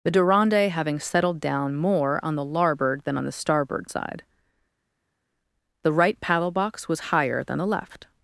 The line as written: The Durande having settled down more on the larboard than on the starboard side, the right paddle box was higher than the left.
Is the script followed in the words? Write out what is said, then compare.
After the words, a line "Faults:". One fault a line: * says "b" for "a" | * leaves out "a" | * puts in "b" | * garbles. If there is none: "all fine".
The Durande having settled down more on the larboard than on the starboard side, the right paddle box was higher than the left.
Faults:
all fine